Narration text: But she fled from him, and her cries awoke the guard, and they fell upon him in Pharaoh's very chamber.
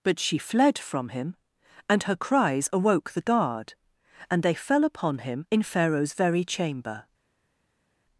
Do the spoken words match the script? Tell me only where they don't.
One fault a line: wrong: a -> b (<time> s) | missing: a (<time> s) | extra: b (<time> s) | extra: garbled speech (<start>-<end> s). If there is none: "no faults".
no faults